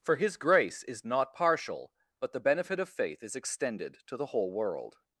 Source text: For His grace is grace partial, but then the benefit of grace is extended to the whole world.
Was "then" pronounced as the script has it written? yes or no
no